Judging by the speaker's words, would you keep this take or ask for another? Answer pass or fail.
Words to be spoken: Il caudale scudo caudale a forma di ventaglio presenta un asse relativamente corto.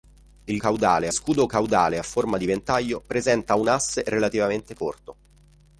pass